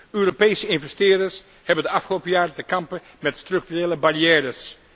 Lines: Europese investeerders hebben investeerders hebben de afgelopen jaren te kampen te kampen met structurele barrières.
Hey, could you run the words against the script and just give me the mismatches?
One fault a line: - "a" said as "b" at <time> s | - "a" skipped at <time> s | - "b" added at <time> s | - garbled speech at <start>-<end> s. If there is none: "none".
- "investeerders hebben" skipped at 1.8 s
- "te kampen" skipped at 3.0 s